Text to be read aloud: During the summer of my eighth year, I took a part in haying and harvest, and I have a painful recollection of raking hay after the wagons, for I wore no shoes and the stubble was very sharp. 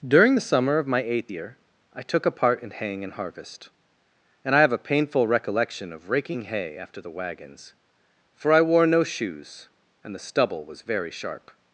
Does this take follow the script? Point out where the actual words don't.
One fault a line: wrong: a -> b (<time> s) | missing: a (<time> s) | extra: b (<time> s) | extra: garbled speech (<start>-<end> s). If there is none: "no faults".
no faults